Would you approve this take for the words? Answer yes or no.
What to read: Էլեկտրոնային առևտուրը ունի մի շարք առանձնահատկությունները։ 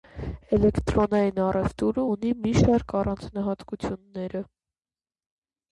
yes